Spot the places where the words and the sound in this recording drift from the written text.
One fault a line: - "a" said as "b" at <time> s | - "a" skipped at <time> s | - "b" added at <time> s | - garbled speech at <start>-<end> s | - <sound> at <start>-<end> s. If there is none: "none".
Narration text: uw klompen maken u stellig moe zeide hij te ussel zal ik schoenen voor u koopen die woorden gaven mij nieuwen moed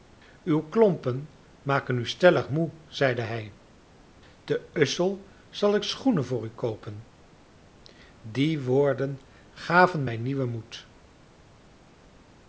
none